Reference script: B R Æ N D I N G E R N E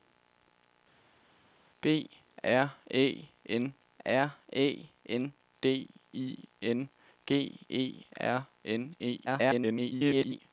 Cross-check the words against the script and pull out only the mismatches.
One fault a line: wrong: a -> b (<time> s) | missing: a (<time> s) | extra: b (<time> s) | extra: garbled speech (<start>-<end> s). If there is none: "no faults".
extra: R Æ N (4.0 s)
extra: garbled speech (9.3-10.4 s)